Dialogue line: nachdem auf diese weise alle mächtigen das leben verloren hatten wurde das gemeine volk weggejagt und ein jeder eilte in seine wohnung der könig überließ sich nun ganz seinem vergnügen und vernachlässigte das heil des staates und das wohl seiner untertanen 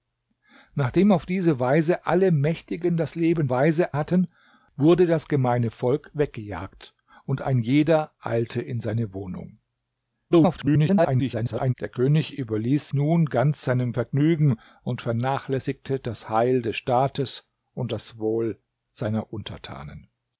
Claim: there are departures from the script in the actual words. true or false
true